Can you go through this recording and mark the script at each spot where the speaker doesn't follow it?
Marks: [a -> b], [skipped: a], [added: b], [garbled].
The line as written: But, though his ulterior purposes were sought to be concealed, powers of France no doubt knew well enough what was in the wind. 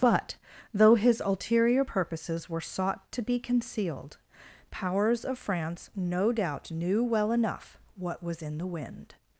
But, though his ulterior purposes were sought to be concealed, powers of France no doubt knew well enough what was in the wind.